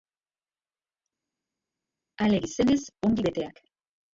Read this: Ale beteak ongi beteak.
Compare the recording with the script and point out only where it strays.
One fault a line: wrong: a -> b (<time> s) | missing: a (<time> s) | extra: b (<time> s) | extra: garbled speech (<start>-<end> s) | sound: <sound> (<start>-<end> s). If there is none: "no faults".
wrong: beteak -> gizenez (2.4 s)